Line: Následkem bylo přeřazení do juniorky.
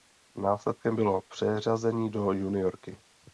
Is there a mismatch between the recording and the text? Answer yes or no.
no